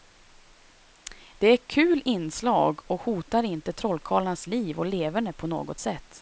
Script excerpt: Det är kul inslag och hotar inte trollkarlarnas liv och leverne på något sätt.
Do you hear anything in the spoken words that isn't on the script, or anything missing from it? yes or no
no